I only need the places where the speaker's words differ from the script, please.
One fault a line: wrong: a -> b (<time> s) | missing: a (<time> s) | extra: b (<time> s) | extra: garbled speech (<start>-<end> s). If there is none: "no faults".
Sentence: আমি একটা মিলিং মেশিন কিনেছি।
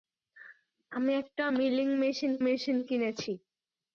extra: মেশিন (2.4 s)